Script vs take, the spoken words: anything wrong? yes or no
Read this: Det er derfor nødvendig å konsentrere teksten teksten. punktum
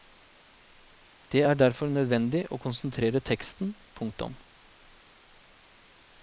yes